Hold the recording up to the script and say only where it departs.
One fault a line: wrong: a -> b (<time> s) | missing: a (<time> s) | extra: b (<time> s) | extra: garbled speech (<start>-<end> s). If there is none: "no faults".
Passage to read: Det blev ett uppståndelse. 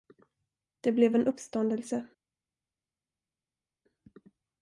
wrong: ett -> en (1.2 s)